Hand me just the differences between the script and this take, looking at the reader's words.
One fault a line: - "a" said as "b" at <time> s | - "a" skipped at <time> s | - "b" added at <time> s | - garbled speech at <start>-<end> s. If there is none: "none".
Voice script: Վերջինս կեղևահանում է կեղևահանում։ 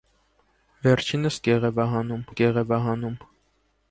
none